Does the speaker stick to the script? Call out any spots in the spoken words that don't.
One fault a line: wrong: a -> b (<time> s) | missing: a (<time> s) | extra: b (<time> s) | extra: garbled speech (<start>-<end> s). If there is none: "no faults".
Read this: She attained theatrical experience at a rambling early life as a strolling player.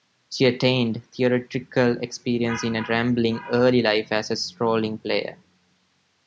wrong: at -> in (2.6 s)